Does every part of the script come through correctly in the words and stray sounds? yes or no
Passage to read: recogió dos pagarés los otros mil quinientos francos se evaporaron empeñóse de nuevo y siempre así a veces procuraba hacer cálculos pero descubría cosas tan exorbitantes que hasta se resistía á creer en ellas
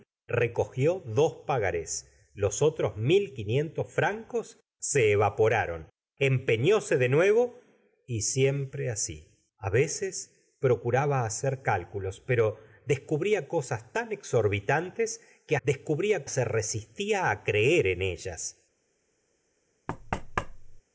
no